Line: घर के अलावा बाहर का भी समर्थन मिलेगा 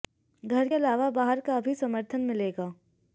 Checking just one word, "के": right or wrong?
wrong